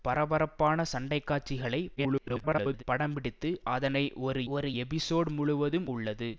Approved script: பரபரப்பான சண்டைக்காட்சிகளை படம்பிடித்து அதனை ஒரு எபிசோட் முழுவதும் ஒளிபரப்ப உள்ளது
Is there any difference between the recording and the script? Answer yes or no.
yes